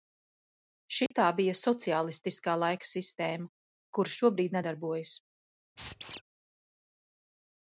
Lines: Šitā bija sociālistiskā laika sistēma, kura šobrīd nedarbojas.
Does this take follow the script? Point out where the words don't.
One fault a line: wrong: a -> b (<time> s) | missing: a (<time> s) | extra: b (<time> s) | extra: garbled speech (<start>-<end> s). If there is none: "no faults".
no faults